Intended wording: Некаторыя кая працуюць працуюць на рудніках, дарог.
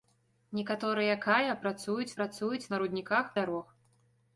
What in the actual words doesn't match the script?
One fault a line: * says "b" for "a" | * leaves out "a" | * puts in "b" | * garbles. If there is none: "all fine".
all fine